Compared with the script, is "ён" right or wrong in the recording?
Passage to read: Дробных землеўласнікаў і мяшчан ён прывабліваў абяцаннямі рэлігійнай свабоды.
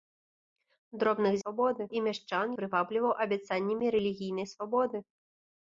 wrong